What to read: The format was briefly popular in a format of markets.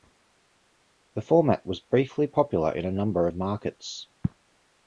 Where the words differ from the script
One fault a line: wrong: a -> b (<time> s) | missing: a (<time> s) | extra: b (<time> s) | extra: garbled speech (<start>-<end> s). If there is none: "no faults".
wrong: format -> number (2.9 s)